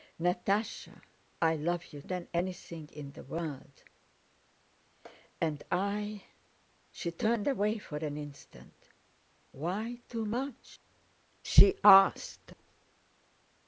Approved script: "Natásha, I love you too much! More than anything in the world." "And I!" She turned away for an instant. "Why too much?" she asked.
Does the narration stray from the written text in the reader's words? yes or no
yes